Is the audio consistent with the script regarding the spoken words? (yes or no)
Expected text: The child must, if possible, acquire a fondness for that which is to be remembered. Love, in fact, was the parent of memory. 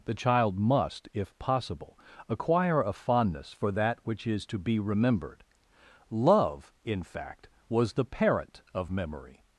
yes